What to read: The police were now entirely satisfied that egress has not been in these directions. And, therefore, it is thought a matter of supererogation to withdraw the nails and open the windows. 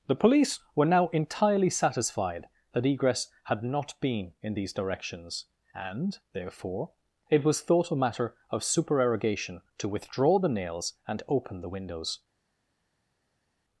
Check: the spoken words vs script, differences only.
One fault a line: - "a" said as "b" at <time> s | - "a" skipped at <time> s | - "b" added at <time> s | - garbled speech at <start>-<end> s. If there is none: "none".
- "has" said as "had" at 3.5 s
- "is" said as "was" at 7.4 s